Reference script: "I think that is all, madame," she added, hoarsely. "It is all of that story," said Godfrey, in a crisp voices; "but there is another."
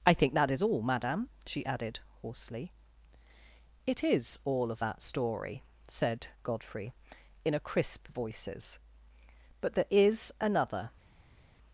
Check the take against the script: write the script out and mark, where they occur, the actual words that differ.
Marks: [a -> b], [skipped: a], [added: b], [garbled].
"I think that is all, madame," she added, hoarsely. "It is all of that story," said Godfrey, in a crisp voices; "but there is another."